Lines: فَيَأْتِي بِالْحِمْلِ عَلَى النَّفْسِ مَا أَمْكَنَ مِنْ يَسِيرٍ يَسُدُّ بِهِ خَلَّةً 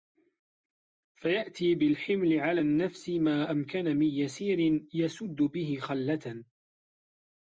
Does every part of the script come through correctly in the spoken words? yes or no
yes